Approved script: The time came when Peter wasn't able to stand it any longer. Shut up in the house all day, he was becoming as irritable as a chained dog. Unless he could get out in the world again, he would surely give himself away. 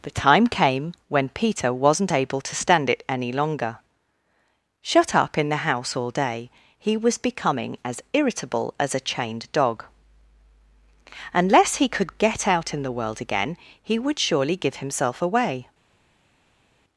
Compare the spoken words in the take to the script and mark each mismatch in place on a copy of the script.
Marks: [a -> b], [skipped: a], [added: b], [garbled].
The time came when Peter wasn't able to stand it any longer. Shut up in the house all day, he was becoming as irritable as a chained dog. Unless he could get out in the world again, he would surely give himself away.